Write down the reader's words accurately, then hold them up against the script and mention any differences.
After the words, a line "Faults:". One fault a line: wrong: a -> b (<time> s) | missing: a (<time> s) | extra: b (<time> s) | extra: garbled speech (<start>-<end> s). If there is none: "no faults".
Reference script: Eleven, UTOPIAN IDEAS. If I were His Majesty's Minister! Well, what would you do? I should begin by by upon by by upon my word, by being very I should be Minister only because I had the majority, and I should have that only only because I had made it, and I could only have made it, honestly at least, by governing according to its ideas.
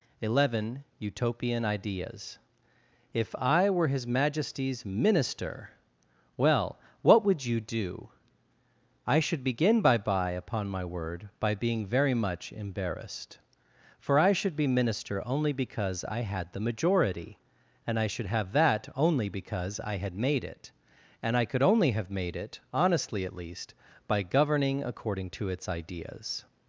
Eleven, UTOPIAN IDEAS. If I were His Majesty's Minister! Well, what would you do? I should begin by by upon my word, by being very much embarrassed. For I should be Minister only because I had the majority, and I should have that only because I had made it, and I could only have made it, honestly at least, by governing according to its ideas.
Faults:
missing: by by upon (10.7 s)
extra: much embarrassed For (12.2 s)
missing: only (19.3 s)